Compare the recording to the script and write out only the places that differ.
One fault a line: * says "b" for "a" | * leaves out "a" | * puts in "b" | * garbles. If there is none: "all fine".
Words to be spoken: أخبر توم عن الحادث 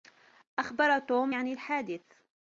all fine